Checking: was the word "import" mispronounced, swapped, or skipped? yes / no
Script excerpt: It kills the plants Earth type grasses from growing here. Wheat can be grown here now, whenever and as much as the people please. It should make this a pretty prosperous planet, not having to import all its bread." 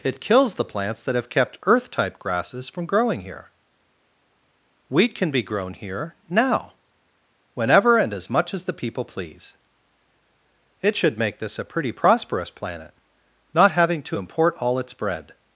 no